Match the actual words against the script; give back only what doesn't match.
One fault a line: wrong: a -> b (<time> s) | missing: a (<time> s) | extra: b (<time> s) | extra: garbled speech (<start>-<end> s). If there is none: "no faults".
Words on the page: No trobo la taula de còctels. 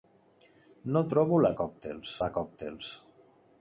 wrong: taula -> còctels (1.6 s)